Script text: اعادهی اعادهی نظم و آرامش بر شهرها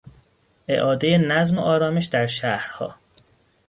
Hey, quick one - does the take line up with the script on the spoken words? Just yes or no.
no